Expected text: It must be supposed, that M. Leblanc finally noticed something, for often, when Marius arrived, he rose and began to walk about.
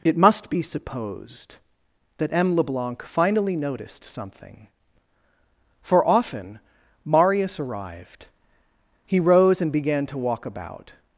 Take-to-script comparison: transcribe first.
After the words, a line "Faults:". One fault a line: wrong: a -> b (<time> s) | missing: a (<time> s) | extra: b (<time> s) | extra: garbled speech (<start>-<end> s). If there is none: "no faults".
It must be supposed, that M. Leblanc finally noticed something, for often, Marius arrived, he rose and began to walk about.
Faults:
missing: when (6.6 s)